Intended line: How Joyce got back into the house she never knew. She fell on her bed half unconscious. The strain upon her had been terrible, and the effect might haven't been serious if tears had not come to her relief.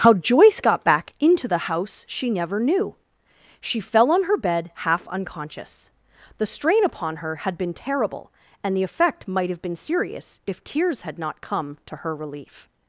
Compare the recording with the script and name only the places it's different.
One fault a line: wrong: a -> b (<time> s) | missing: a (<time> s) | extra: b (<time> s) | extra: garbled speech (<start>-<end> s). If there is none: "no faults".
wrong: haven't -> have (9.5 s)